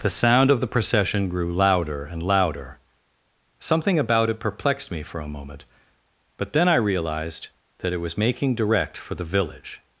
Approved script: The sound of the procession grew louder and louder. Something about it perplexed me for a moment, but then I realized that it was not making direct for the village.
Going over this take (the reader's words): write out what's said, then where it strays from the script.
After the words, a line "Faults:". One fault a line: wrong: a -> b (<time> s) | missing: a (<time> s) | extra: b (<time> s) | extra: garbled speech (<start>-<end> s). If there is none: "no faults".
The sound of the procession grew louder and louder. Something about it perplexed me for a moment, but then I realized that it was making direct for the village.
Faults:
missing: not (8.2 s)